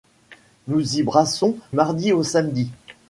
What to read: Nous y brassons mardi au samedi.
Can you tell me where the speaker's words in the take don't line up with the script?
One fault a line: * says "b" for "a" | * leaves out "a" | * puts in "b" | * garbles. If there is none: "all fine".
all fine